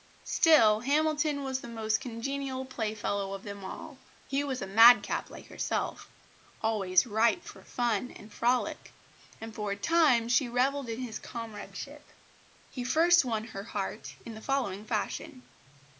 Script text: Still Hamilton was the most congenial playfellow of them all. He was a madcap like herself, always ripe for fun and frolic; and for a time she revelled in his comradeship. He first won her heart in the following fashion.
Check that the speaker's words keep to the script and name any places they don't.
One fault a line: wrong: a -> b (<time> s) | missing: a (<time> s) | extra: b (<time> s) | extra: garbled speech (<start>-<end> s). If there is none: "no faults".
no faults